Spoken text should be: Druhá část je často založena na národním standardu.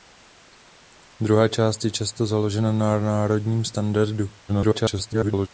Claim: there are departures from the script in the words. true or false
true